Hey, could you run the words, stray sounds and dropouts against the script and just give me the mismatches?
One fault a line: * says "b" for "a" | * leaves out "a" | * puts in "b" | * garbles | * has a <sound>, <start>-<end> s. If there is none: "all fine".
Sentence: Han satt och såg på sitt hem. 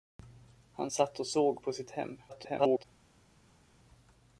* garbles